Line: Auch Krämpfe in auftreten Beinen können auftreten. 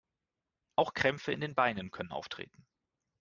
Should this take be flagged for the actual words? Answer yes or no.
yes